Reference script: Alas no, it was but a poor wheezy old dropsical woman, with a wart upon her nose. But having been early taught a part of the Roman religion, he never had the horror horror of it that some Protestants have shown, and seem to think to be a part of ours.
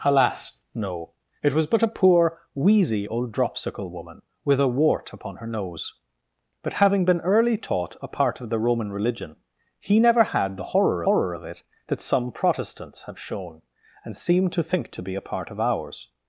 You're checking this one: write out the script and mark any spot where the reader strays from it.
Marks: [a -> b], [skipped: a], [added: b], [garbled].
Alas no, it was but a poor wheezy old dropsical woman, with a wart upon her nose. But having been early taught a part of the Roman religion, he never had the horror horror of it that some Protestants have shown, and seem to think to be a part of ours.